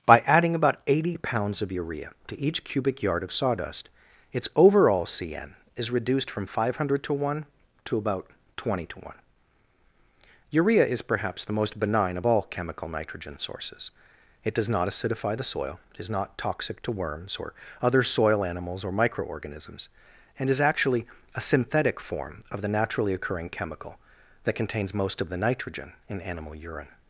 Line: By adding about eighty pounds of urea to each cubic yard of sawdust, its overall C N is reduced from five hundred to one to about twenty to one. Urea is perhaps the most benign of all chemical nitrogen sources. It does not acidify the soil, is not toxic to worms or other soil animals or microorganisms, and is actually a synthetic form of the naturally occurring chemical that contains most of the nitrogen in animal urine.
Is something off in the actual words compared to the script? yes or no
no